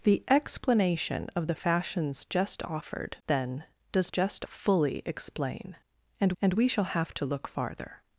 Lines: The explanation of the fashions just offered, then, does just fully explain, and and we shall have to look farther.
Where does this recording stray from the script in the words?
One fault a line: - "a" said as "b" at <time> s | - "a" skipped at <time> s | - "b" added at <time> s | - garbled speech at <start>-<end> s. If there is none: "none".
none